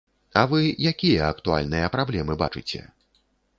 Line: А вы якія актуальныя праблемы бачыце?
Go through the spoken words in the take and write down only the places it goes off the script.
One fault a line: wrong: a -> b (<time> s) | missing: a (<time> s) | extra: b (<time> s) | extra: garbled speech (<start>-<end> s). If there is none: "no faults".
no faults